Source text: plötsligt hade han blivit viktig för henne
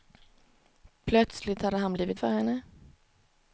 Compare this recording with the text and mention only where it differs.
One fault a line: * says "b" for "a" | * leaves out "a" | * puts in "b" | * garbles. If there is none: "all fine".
* leaves out "viktig"